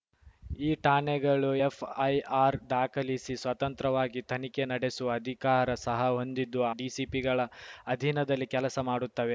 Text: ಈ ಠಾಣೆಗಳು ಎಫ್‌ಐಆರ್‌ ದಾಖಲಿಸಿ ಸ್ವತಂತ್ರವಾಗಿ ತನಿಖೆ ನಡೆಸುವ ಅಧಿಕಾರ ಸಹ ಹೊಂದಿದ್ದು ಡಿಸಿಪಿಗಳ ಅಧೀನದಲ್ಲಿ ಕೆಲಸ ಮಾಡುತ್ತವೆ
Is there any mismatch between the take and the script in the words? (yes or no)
no